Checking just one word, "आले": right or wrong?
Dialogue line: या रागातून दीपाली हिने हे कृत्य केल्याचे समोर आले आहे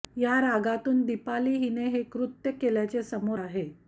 wrong